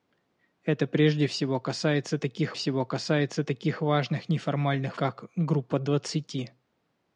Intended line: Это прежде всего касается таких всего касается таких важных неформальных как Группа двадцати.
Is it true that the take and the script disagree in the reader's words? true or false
false